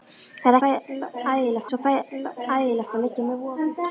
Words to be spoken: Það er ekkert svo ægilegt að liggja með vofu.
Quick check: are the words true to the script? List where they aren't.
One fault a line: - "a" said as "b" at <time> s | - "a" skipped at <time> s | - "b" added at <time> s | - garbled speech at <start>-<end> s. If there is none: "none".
- "ekkert" said as "ægilegt" at 0.7 s